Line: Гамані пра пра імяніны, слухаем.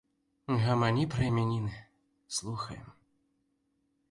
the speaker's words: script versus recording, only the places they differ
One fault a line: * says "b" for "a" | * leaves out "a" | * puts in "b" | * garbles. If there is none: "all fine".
* leaves out "пра"